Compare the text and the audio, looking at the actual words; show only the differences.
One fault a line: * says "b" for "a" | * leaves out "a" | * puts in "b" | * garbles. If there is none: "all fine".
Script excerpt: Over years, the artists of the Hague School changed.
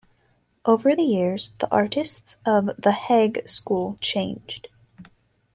all fine